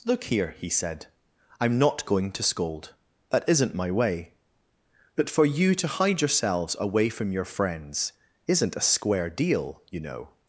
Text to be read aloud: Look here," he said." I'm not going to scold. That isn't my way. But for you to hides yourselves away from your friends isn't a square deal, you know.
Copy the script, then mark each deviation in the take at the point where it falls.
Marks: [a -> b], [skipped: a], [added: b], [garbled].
Look here," he said." I'm not going to scold. That isn't my way. But for you to [hides -> hide] yourselves away from your friends isn't a square deal, you know.